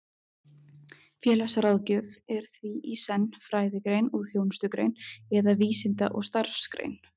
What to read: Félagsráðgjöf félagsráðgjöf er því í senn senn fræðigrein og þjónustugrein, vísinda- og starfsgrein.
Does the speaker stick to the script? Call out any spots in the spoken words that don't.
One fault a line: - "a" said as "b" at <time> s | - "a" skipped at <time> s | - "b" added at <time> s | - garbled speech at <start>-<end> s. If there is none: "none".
- "félagsráðgjöf" skipped at 2.1 s
- "senn" skipped at 3.3 s
- "eða" added at 5.4 s